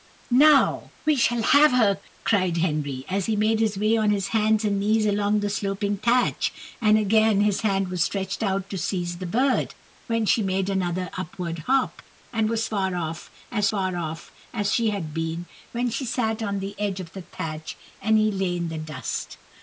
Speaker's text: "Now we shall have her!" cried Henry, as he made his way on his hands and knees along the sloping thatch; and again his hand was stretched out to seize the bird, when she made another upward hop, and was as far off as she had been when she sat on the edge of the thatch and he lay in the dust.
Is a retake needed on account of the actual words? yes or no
yes